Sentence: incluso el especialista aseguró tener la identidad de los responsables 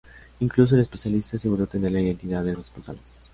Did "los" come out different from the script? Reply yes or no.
yes